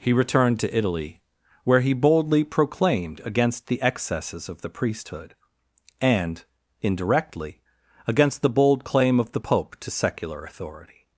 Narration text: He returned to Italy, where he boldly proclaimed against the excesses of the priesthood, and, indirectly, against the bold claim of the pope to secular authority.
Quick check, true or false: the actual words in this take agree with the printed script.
true